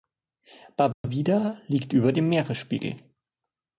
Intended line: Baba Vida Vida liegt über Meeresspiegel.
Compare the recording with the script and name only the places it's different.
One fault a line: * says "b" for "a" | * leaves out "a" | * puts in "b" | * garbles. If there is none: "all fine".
* leaves out "Vida"
* puts in "dem"